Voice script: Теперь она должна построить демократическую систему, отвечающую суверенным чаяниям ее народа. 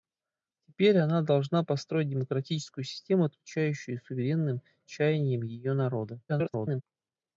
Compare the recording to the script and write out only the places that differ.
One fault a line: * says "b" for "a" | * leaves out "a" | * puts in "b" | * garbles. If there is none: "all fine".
* garbles